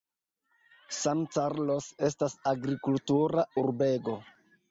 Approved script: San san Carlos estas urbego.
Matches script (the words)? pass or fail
fail